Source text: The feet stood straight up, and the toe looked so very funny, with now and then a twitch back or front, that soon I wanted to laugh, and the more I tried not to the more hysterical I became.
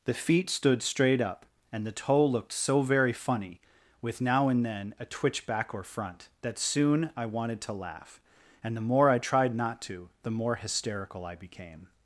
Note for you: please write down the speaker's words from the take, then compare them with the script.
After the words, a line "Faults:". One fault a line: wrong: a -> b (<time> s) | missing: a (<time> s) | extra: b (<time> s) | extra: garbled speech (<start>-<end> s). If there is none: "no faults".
The feet stood straight up, and the toe looked so very funny, with now and then a twitch back or front, that soon I wanted to laugh, and the more I tried not to the more hysterical I became.
Faults:
no faults